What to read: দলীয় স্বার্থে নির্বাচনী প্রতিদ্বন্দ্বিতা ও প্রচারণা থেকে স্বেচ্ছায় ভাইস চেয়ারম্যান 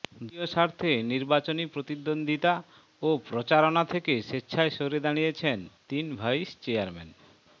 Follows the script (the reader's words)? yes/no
no